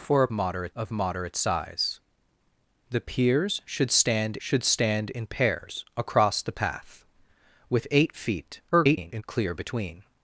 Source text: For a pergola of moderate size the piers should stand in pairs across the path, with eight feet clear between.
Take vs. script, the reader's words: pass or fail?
fail